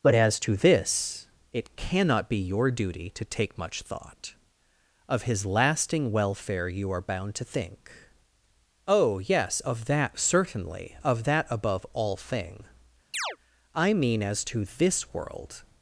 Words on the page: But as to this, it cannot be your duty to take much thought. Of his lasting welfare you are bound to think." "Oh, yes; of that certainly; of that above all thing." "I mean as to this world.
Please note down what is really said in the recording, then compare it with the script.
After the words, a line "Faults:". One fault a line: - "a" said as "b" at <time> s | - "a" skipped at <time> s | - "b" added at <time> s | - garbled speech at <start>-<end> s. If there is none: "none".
But as to this, it cannot be your duty to take much thought. Of his lasting welfare you are bound to think." "Oh, yes; of that certainly; of that above all thing." "I mean as to this world.
Faults:
none